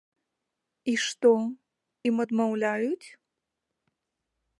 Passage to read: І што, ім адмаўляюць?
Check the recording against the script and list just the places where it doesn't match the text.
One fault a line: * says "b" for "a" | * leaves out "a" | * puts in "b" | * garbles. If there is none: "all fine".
all fine